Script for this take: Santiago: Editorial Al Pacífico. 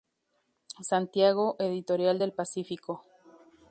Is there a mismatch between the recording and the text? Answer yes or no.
yes